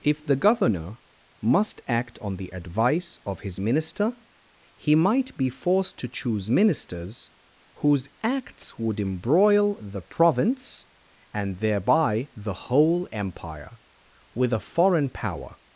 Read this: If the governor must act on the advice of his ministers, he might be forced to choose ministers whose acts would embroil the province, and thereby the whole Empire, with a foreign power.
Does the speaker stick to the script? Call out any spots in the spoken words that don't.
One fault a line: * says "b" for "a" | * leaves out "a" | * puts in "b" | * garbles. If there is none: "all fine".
* says "minister" for "ministers"